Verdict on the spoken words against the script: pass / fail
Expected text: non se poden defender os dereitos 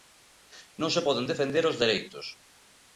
pass